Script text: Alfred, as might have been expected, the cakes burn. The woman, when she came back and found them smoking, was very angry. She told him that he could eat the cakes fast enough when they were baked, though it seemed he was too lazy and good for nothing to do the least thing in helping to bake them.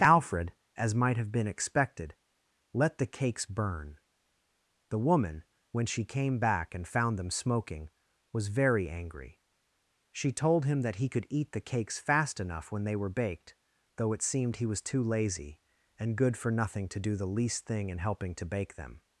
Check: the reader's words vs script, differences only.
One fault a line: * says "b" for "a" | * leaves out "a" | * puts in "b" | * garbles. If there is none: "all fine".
* puts in "let"